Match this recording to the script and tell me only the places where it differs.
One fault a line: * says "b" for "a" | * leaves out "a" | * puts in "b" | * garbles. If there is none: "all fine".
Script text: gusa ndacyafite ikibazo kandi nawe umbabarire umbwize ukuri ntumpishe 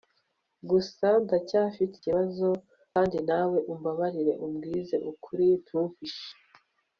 all fine